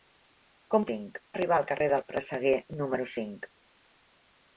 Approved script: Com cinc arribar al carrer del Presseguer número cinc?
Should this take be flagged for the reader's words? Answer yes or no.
no